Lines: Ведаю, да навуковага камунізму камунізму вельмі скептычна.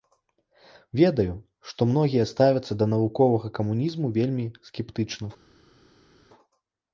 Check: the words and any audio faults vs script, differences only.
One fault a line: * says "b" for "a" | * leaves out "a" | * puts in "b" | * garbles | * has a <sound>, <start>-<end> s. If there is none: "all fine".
* puts in "што многія ставяцца"
* leaves out "камунізму"